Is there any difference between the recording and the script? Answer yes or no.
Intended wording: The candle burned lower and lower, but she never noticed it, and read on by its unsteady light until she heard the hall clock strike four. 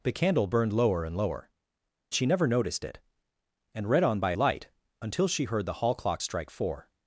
yes